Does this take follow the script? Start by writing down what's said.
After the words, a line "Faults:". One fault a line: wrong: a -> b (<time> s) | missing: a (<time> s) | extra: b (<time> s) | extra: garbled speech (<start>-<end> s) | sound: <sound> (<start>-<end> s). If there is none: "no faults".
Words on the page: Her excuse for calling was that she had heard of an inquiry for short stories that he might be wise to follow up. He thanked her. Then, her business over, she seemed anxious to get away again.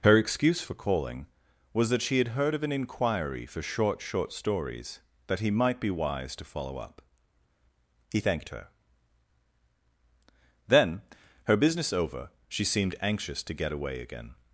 Her excuse for calling was that she had heard of an inquiry for short short stories that he might be wise to follow up. He thanked her. Then, her business over, she seemed anxious to get away again.
Faults:
extra: short (4.0 s)